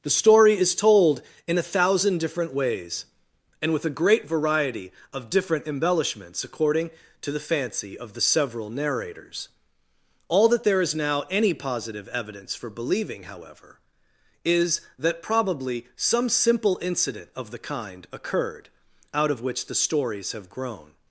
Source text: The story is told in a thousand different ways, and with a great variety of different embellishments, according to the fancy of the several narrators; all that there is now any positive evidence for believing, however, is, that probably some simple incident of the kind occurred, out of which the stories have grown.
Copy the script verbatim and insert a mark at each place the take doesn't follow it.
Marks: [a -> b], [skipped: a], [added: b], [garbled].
The story is told in a thousand different ways, and with a great variety of different embellishments, according to the fancy of the several narrators; all that there is now any positive evidence for believing, however, is, that probably some simple incident of the kind occurred, out of which the stories have grown.